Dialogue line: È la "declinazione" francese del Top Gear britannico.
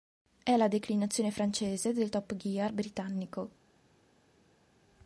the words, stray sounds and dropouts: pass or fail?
pass